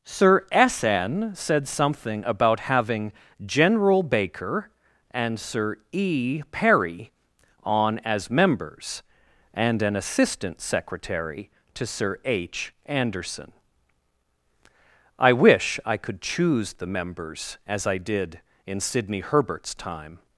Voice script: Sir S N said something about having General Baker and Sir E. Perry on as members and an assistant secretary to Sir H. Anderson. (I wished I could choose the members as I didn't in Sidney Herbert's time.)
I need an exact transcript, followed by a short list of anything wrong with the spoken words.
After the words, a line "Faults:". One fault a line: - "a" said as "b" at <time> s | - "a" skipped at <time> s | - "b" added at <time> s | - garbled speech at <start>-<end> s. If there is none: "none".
Sir S N said something about having General Baker and Sir E. Perry on as members and an assistant secretary to Sir H. Anderson. (I wish I could choose the members as I did in Sidney Herbert's time.)
Faults:
- "wished" said as "wish" at 15.3 s
- "didn't" said as "did" at 18.0 s